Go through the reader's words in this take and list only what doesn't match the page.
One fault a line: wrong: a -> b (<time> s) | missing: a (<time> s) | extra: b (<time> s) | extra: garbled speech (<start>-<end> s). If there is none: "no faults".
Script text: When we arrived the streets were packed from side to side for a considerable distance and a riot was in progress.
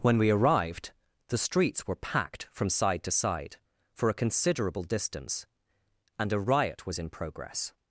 no faults